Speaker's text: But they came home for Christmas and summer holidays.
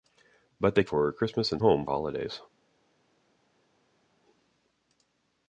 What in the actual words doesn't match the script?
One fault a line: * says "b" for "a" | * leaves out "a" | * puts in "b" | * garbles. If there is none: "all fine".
* leaves out "came home"
* says "home" for "summer"